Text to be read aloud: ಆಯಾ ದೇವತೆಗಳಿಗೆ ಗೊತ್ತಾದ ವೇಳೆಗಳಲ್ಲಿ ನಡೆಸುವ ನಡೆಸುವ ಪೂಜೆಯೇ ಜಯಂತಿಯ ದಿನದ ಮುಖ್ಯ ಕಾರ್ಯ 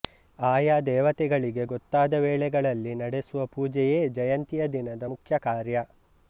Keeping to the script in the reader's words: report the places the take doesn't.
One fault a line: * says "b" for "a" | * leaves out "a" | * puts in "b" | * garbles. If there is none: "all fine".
* leaves out "ನಡೆಸುವ"